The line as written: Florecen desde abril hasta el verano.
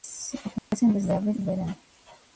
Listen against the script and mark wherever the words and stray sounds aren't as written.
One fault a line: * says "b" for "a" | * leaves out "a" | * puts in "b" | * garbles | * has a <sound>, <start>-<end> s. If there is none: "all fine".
* has a dropout, 0.6-0.7 s
* leaves out "hasta"